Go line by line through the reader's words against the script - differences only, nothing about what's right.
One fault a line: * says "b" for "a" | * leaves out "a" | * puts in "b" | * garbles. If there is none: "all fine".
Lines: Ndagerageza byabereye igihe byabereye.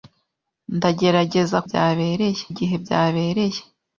all fine